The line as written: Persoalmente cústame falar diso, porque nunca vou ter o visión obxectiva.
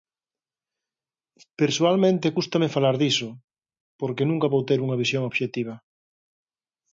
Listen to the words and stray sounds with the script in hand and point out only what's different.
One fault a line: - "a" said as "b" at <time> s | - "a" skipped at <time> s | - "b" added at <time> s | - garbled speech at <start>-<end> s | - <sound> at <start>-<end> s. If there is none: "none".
- "o" said as "unha" at 4.8 s